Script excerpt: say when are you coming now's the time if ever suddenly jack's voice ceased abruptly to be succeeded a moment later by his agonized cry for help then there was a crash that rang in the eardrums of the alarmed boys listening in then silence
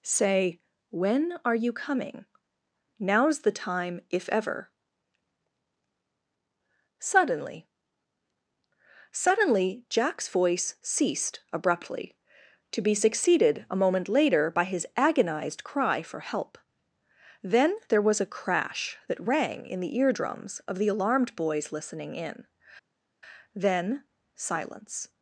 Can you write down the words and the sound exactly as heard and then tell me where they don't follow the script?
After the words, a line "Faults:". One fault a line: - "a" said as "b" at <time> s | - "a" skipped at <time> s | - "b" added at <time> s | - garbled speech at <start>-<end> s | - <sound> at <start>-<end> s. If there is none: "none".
say when are you coming now's the time if ever suddenly suddenly jack's voice ceased abruptly to be succeeded a moment later by his agonized cry for help then there was a crash that rang in the eardrums of the alarmed boys listening in then silence
Faults:
- "suddenly" added at 9.1 s